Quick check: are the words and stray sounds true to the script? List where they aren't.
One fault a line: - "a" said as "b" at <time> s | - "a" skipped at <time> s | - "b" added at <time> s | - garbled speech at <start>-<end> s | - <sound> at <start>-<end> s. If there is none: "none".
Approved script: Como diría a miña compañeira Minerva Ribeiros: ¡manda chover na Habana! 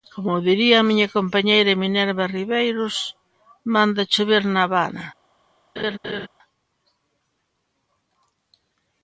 - laugh at 5.8-6.3 s